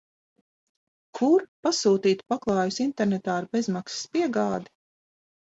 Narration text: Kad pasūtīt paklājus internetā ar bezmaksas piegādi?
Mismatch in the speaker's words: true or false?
true